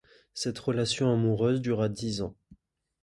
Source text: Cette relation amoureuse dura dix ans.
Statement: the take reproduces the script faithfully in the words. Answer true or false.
true